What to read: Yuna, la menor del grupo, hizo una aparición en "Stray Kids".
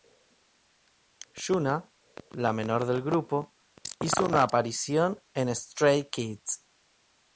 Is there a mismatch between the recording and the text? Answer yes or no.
no